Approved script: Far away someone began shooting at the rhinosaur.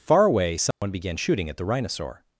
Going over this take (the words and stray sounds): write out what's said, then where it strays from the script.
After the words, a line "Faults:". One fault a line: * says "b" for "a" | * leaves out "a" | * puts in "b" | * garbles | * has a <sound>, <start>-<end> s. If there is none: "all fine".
Far away someone began shooting at the rhinosaur.
Faults:
* has a dropout, 0.7-0.8 s